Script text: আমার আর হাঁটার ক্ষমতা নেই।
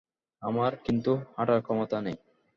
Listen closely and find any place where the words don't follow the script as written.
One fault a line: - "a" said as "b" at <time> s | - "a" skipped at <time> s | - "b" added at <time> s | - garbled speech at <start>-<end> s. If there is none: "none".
- "আর" said as "কিন্তু" at 0.8 s